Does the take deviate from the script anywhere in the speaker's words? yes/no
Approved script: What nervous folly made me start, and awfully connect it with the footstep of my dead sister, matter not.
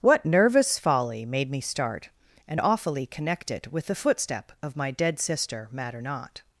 no